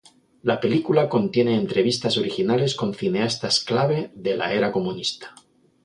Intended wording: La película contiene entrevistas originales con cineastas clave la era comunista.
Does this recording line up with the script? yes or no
no